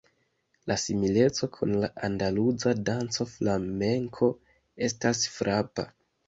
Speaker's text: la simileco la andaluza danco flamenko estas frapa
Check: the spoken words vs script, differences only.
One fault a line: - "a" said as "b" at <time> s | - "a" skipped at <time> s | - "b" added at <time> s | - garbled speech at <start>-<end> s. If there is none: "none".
- "kun" added at 1.6 s